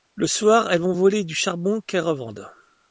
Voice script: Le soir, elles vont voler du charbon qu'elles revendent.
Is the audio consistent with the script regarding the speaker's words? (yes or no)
yes